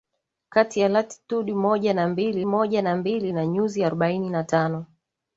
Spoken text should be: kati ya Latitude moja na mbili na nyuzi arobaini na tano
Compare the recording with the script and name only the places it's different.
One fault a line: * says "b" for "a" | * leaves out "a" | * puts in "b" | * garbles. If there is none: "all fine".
* puts in "moja na mbili"